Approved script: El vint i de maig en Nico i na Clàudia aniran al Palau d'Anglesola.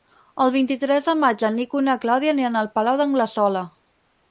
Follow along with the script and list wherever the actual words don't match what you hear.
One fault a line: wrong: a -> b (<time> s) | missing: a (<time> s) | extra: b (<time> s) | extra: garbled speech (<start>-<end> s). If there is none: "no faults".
extra: tres (0.8 s)